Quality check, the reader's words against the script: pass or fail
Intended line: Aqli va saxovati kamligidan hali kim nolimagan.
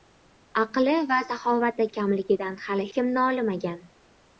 pass